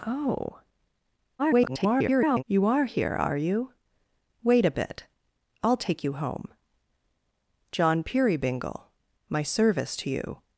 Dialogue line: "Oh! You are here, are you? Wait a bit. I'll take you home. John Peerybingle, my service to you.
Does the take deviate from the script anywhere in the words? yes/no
yes